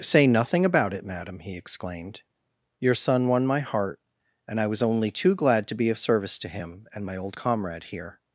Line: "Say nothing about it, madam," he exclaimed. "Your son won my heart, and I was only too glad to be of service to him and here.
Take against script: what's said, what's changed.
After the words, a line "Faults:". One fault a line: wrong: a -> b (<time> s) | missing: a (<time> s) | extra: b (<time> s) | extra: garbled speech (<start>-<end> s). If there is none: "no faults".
"Say nothing about it, madam," he exclaimed. "Your son won my heart, and I was only too glad to be of service to him and my old comrade here.
Faults:
extra: my old comrade (7.0 s)